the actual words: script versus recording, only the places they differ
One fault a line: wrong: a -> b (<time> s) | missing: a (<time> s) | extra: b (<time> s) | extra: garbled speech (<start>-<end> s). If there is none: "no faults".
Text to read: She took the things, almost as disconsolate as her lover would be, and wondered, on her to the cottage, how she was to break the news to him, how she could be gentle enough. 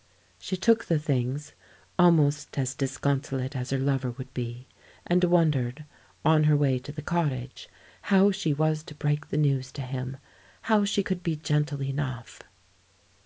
extra: way (6.6 s)